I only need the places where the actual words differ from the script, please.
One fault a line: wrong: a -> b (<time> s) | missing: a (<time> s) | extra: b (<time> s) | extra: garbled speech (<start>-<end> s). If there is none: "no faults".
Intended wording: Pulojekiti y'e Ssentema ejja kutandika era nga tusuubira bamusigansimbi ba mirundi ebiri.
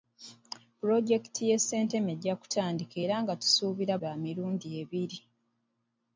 missing: bamusigansimbi (3.9 s)